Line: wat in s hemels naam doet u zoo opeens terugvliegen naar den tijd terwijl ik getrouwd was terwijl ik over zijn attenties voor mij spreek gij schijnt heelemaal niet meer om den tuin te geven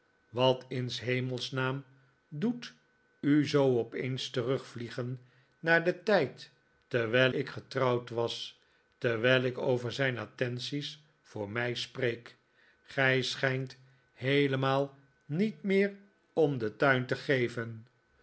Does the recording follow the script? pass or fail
pass